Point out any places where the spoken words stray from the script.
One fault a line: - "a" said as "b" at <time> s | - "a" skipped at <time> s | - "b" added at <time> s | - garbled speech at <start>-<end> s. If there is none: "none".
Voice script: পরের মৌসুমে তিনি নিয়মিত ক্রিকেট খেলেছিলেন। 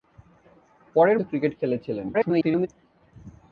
- "মৌসুমে তিনি নিয়মিত" skipped at 1.2 s
- garbled speech at 2.1-2.7 s